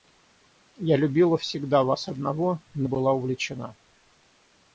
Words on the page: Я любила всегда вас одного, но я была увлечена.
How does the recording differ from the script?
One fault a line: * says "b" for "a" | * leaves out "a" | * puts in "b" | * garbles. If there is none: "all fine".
* leaves out "я"